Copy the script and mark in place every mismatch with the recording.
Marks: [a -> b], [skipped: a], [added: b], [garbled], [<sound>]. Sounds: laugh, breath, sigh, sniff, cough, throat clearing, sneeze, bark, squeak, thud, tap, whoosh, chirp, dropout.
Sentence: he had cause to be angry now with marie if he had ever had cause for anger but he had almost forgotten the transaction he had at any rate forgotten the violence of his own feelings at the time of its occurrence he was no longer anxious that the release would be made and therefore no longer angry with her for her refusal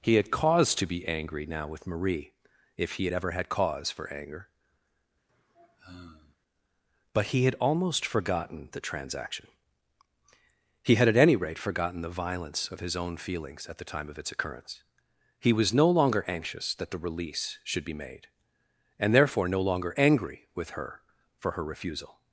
he had cause to be angry now with marie if he had ever had cause for anger [sigh] but he had almost forgotten the transaction he had at any rate forgotten the violence of his own feelings at the time of its occurrence he was no longer anxious that the release [would -> should] be made and therefore no longer angry with her for her refusal